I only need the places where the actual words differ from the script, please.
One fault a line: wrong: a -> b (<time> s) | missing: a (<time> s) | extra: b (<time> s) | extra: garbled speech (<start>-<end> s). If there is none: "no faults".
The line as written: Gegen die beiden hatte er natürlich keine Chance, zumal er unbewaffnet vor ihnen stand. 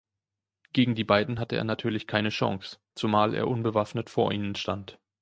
no faults